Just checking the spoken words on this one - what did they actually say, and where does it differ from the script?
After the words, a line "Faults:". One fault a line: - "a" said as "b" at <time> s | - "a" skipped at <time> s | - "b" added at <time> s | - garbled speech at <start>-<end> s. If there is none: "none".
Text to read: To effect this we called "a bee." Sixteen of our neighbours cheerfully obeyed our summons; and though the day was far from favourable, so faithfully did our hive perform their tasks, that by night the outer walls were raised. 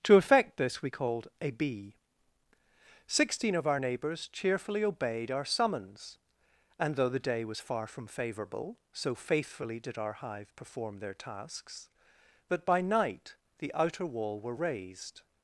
To effect this we called "a bee." Sixteen of our neighbours cheerfully obeyed our summons; and though the day was far from favourable, so faithfully did our hive perform their tasks, that by night the outer wall were raised.
Faults:
- "walls" said as "wall" at 14.0 s